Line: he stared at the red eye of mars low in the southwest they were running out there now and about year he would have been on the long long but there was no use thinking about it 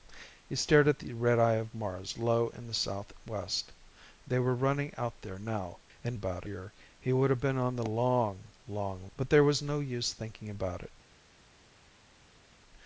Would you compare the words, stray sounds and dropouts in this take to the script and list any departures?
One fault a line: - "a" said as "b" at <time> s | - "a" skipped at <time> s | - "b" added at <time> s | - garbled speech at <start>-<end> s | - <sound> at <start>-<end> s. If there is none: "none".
none